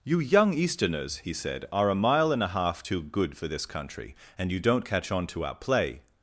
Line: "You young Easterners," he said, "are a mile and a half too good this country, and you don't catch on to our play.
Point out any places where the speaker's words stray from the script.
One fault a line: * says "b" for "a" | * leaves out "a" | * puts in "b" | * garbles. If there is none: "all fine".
* puts in "for"